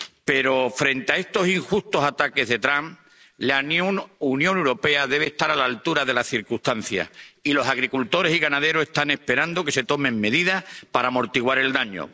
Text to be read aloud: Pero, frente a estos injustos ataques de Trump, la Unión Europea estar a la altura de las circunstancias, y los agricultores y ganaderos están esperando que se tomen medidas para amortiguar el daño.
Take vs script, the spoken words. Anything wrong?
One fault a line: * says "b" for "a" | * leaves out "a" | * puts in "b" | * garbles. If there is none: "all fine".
* puts in "debe"